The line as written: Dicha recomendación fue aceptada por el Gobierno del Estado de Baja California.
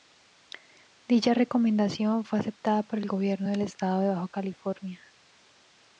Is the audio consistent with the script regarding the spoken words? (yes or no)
yes